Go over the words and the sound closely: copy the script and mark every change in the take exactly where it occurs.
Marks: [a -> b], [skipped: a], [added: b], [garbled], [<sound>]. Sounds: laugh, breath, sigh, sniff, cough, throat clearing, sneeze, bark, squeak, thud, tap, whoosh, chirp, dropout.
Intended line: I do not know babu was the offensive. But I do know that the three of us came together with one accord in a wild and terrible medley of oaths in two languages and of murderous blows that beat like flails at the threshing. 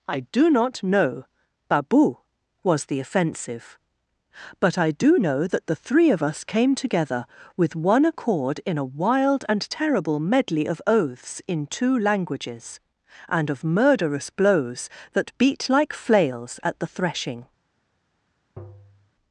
I do not know babu was the offensive. But I do know that the three of us came together with one accord in a wild and terrible medley of oaths in two languages and of murderous blows that beat like flails at the threshing. [tap]